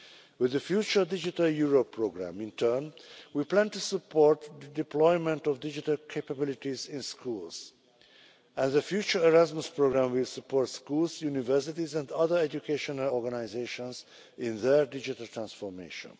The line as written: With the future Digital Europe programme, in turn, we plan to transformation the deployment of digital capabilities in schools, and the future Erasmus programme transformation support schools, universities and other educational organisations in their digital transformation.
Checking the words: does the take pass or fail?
fail